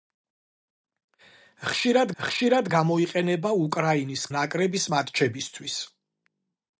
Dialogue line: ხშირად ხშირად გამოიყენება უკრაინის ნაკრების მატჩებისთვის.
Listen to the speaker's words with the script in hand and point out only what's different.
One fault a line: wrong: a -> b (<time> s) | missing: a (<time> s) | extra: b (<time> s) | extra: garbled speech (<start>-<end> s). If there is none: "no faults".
no faults